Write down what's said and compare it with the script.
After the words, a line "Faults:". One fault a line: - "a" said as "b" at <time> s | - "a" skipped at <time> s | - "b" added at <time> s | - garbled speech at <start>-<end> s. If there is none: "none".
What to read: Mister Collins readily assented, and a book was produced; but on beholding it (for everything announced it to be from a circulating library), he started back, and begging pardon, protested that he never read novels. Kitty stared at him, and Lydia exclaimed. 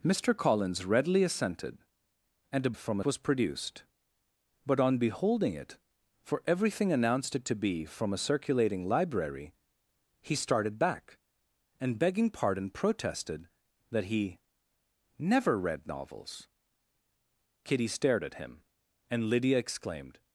Mister Collins readily assented, and a from was produced; but on beholding it (for everything announced it to be from a circulating library), he started back, and begging pardon, protested that he never read novels. Kitty stared at him, and Lydia exclaimed.
Faults:
- "book" said as "from" at 2.7 s